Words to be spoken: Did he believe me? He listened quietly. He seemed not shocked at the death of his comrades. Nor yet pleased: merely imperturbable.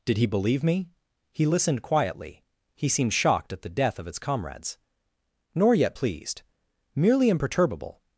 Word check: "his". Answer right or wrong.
wrong